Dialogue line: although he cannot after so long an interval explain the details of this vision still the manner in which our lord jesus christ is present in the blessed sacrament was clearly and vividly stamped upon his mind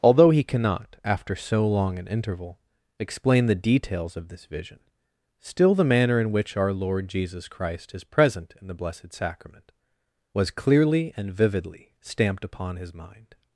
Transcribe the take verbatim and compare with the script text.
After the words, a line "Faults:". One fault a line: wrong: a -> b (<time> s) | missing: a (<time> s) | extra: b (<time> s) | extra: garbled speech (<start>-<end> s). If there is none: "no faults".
although he cannot after so long an interval explain the details of this vision still the manner in which our lord jesus christ is present in the blessed sacrament was clearly and vividly stamped upon his mind
Faults:
no faults